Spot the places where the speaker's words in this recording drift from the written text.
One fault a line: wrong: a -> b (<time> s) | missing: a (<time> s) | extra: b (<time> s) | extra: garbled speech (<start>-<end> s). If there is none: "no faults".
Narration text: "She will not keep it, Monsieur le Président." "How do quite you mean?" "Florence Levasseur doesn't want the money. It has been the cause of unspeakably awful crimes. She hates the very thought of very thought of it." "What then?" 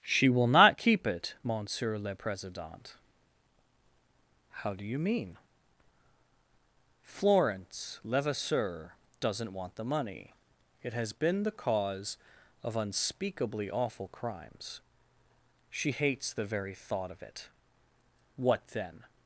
missing: quite (4.9 s)
missing: very thought of (17.2 s)